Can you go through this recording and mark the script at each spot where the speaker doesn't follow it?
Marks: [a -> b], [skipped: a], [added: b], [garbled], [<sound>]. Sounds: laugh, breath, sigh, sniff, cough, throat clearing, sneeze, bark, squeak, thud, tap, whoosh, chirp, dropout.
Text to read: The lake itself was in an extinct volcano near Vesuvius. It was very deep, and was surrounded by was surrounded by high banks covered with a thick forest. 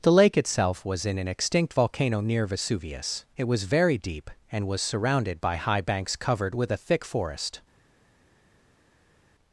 The lake itself was in an extinct volcano near Vesuvius. It was very deep, and was surrounded by [skipped: was surrounded by] high banks covered with a thick forest.